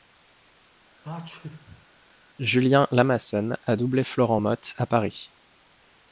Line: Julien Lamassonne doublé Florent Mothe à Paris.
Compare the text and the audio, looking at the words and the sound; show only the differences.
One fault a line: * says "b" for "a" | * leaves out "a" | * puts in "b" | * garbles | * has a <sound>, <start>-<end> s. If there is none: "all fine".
* has a sneeze, 1.0-1.9 s
* puts in "a"